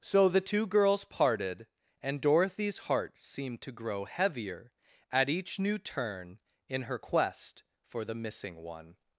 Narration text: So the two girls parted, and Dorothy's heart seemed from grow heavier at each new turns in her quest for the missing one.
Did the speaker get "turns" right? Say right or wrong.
wrong